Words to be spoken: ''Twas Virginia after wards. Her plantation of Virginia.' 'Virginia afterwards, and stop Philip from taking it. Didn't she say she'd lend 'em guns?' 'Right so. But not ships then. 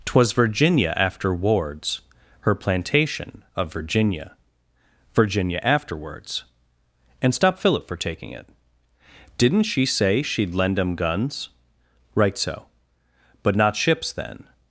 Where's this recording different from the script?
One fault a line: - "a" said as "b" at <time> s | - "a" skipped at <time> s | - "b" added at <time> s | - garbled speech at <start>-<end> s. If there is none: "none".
- "from" said as "for" at 7.9 s